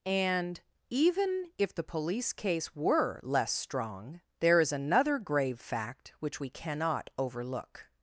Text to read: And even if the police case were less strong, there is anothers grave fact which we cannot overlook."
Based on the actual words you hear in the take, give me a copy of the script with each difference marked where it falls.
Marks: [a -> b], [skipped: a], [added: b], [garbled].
And even if the police case were less strong, there is [anothers -> another] grave fact which we cannot overlook."